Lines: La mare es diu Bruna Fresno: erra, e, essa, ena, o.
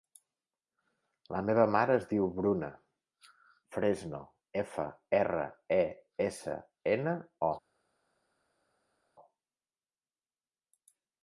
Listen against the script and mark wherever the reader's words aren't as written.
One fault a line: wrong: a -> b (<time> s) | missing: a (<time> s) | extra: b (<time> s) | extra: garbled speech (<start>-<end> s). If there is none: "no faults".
extra: meva (1.5 s)
extra: efa (4.6 s)